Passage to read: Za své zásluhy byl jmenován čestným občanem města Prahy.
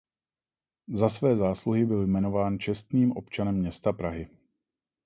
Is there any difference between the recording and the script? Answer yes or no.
no